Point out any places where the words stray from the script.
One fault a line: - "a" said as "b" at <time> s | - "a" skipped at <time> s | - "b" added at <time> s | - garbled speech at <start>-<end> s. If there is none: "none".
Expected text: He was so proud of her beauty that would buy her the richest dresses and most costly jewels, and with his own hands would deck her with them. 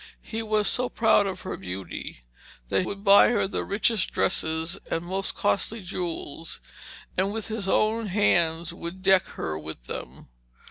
none